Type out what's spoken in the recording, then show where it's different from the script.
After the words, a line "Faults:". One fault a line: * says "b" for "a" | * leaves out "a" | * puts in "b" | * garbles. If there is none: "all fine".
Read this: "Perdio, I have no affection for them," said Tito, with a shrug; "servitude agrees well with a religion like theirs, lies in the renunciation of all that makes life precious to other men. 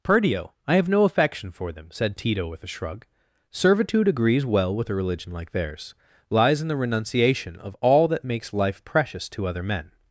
"Perdio, I have no affection for them," said Tito, with a shrug; "servitude agrees well with a religion like theirs, lies in the renunciation of all that makes life precious to other men.
Faults:
all fine